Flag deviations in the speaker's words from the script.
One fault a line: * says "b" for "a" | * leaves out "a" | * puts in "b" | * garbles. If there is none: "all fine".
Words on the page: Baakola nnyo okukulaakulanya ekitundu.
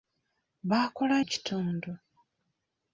* leaves out "nnyo okukulaakulanya"